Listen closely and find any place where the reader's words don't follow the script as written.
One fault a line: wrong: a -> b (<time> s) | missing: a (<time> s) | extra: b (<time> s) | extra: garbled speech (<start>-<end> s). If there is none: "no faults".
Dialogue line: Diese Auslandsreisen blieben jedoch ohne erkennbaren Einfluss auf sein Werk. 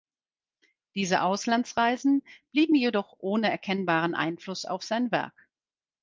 no faults